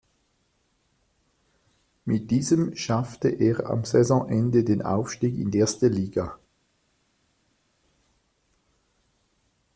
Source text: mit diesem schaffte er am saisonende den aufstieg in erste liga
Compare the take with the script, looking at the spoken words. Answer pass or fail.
pass